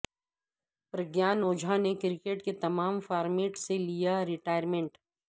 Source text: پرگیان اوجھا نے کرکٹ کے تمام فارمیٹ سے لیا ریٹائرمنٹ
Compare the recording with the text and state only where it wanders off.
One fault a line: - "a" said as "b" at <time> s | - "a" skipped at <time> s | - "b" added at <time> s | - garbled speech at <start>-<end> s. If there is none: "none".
none